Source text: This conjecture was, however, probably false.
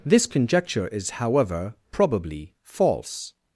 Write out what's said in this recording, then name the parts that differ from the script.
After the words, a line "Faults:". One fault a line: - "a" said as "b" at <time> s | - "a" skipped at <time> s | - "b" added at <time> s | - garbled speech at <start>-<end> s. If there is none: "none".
This conjecture is, however, probably false.
Faults:
- "was" said as "is" at 0.9 s